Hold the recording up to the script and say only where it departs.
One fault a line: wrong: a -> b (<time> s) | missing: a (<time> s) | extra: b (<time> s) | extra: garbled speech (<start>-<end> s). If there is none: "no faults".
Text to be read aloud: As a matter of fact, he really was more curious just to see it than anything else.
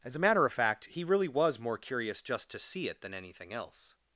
no faults